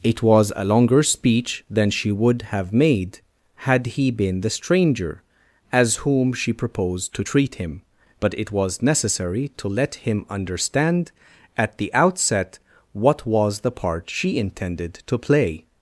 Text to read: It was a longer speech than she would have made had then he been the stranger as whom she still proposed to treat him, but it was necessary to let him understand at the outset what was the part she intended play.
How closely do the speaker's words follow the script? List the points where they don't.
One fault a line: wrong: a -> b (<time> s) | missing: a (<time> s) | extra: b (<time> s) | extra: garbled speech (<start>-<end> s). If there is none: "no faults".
missing: then (3.9 s)
missing: still (6.5 s)
extra: to (15.1 s)